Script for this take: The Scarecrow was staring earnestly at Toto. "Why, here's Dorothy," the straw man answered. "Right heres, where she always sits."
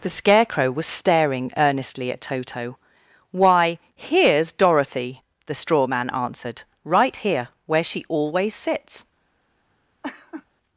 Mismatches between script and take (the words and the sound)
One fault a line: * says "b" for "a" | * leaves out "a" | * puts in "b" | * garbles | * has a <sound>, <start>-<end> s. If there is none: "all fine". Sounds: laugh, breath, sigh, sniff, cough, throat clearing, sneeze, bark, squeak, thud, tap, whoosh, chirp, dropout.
* says "here" for "heres"
* has a laugh, 10.0-10.5 s